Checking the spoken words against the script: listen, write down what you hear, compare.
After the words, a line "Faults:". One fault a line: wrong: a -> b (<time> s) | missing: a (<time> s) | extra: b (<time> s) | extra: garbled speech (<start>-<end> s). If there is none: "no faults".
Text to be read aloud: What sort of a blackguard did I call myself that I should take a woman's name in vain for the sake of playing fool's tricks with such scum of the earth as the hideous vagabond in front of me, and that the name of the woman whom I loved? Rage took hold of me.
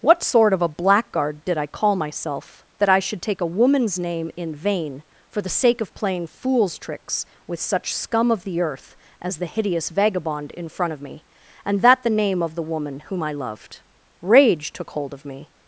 What sort of a blackguard did I call myself that I should take a woman's name in vain for the sake of playing fool's tricks with such scum of the earth as the hideous vagabond in front of me, and that the name of the woman whom I loved? Rage took hold of me.
Faults:
no faults